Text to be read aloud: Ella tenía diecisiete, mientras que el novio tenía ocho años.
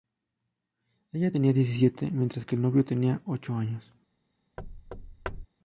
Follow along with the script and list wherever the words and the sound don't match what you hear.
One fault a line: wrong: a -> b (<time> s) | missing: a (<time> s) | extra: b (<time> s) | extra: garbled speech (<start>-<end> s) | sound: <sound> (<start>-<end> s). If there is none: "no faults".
sound: thud (4.6-5.5 s)